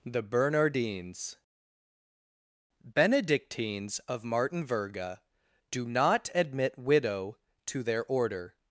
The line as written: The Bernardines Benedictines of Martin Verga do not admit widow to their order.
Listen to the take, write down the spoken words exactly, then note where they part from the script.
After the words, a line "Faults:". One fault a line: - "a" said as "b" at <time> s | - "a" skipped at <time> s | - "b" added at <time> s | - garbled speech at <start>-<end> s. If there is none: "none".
The Bernardines Benedictines of Martin Verga do not admit widow to their order.
Faults:
none